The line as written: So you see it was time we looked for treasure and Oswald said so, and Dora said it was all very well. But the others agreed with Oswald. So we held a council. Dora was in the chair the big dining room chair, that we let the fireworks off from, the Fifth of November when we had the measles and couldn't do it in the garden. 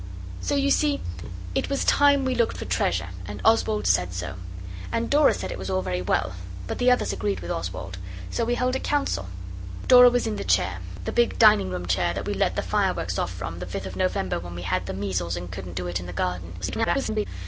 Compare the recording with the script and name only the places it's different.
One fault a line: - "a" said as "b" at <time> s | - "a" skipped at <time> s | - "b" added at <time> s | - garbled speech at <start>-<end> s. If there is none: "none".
- garbled speech at 16.6-17.3 s